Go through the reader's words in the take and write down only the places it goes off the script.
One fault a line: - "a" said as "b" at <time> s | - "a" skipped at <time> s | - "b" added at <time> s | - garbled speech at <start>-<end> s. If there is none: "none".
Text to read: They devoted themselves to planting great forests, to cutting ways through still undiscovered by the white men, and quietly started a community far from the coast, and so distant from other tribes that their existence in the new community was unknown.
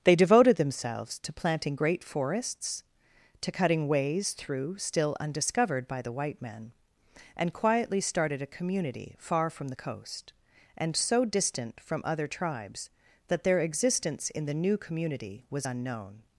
none